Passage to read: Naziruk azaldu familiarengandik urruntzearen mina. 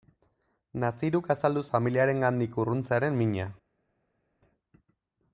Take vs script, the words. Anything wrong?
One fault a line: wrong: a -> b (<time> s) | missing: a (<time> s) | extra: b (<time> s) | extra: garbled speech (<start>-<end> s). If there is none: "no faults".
no faults